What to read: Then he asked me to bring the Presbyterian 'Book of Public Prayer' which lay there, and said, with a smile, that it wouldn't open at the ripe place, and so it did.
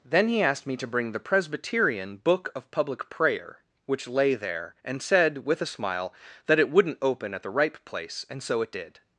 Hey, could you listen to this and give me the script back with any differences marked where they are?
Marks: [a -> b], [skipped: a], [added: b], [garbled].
Then he asked me to bring the Presbyterian 'Book of Public Prayer' which lay there, and said, with a smile, that it wouldn't open at the ripe place, and so it did.